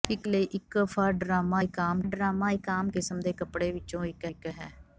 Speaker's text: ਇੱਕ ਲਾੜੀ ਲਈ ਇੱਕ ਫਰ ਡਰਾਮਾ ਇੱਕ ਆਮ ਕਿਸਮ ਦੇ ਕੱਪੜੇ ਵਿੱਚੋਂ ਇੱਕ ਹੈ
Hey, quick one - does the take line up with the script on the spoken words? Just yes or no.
no